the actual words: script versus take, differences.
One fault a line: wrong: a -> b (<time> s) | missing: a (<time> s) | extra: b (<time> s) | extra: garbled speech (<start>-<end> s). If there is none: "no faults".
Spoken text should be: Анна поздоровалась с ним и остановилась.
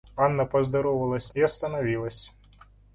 missing: ним (1.3 s)